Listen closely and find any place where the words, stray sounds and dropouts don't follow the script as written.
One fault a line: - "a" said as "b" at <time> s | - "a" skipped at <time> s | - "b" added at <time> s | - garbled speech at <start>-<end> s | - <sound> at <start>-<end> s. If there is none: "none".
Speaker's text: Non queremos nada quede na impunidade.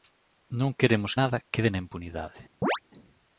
- chirp at 2.6-2.8 s